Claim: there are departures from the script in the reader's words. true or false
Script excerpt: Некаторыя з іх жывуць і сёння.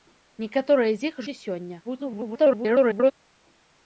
true